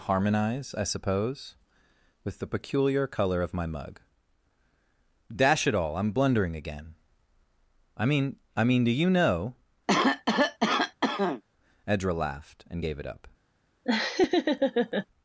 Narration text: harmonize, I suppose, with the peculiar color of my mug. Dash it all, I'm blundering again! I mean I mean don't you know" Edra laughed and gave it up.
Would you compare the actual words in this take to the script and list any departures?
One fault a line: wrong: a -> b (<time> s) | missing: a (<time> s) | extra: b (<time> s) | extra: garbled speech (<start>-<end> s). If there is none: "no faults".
wrong: don't -> do (8.8 s)